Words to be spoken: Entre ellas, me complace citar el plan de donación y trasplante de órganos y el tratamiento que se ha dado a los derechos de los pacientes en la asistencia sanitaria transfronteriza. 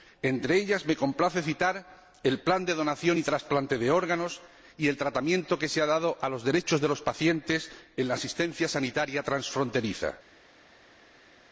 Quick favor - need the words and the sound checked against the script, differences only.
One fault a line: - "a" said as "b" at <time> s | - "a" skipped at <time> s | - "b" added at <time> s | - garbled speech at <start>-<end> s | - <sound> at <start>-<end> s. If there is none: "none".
none